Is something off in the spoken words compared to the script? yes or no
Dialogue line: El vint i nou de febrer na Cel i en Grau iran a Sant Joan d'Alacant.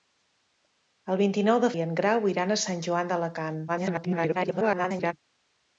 yes